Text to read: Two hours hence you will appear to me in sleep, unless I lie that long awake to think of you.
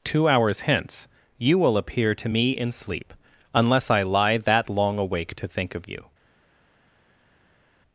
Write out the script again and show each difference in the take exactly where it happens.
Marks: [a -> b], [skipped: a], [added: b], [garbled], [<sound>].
Two hours hence you will appear to me in sleep, unless I lie that long awake to think of you.